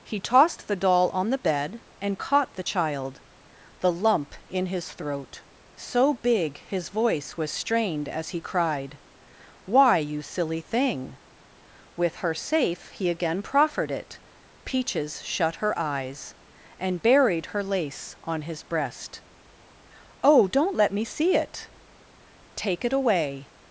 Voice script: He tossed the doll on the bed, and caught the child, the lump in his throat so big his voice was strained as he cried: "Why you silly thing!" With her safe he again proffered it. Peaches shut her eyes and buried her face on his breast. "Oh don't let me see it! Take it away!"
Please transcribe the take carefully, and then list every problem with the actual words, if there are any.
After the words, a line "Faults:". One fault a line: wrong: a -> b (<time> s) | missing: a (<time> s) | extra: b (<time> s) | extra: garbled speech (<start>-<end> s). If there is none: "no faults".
He tossed the doll on the bed, and caught the child, the lump in his throat so big his voice was strained as he cried: "Why you silly thing!" With her safe he again proffered it. Peaches shut her eyes and buried her lace on his breast. "Oh don't let me see it! Take it away!"
Faults:
wrong: face -> lace (17.6 s)